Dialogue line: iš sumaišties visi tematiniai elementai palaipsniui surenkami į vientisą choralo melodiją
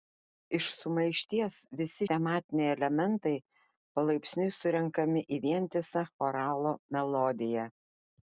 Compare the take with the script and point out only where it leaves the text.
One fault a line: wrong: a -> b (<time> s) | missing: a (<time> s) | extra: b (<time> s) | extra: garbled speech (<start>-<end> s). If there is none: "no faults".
no faults